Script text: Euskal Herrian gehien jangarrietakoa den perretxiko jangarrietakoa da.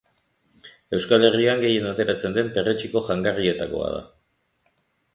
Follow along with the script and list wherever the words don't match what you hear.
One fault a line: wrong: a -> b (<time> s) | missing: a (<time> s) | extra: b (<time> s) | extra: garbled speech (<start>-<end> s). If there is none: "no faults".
wrong: jangarrietakoa -> ateratzen (1.9 s)